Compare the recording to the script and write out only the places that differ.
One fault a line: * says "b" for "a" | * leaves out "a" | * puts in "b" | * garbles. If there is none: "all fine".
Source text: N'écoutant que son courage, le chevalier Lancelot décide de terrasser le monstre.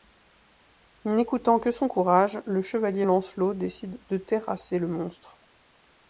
all fine